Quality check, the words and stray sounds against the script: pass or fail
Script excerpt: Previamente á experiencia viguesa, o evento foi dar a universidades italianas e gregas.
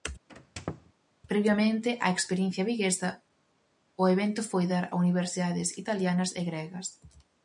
fail